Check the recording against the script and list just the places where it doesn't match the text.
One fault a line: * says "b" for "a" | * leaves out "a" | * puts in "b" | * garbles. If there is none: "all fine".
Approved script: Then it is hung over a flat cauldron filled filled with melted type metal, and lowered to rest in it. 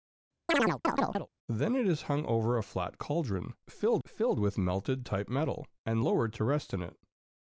all fine